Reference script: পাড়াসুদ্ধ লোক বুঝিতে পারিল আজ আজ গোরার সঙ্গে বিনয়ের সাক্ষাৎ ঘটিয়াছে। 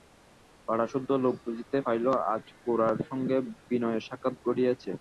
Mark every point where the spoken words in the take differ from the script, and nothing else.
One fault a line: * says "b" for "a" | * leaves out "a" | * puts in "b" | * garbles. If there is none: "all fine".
* leaves out "আজ"